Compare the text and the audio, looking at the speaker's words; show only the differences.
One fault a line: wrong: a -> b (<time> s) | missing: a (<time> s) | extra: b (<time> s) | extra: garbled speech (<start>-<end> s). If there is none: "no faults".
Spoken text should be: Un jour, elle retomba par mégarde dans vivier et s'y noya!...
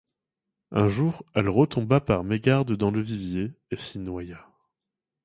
extra: le (2.9 s)